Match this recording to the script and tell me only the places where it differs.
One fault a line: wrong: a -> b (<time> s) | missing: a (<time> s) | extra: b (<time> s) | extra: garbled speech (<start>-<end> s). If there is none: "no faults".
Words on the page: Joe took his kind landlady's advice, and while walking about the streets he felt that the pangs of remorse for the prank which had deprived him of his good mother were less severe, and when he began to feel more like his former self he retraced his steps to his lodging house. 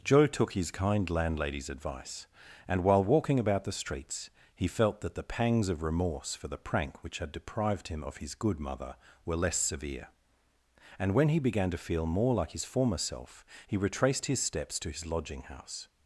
no faults